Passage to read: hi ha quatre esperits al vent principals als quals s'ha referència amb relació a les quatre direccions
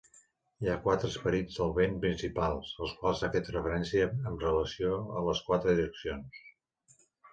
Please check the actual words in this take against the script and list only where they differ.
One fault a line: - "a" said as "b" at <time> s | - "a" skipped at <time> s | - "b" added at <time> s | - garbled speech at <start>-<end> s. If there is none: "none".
- "al" said as "del" at 1.6 s
- "fet" added at 3.4 s